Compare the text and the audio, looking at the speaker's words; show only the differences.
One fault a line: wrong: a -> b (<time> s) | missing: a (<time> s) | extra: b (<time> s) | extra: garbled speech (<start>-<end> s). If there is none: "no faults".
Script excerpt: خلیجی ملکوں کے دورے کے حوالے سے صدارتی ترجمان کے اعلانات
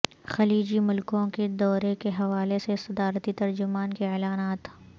no faults